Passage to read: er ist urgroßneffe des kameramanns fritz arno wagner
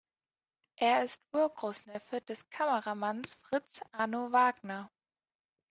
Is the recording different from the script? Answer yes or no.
no